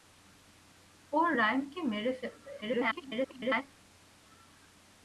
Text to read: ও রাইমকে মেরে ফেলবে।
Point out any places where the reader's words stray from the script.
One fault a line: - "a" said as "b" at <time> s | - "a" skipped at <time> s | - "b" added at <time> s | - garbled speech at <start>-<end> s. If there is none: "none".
- garbled speech at 2.6-3.6 s